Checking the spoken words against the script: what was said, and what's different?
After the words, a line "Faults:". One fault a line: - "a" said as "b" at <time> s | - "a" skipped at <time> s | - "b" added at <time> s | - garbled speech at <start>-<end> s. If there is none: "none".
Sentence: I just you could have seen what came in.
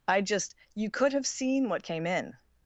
I just you could have seen what came in.
Faults:
none